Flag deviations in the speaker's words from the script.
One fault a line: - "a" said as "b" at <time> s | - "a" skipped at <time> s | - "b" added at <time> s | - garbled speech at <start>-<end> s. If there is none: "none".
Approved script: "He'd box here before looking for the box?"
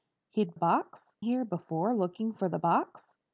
none